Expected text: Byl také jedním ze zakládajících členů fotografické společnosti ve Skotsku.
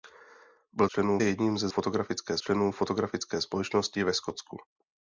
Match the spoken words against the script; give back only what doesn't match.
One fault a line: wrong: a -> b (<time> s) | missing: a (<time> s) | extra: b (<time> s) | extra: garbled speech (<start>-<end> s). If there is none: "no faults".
wrong: také -> členů (0.9 s)
wrong: zakládajících -> fotografické (1.7 s)